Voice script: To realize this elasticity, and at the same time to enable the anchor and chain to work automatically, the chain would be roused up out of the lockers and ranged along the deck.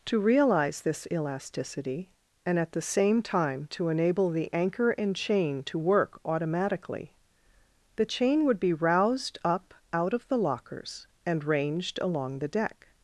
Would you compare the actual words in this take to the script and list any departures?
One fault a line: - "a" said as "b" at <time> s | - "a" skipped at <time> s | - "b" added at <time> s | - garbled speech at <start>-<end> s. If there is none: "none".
none